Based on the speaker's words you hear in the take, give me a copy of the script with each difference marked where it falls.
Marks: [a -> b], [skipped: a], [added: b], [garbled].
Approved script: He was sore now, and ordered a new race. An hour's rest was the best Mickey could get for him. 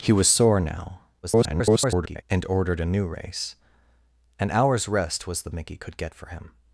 He was sore now, [garbled] and ordered a new race. An hour's rest was the [skipped: best] Mickey could get for him.